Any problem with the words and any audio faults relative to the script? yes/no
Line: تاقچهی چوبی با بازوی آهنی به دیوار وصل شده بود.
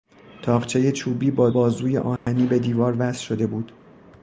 yes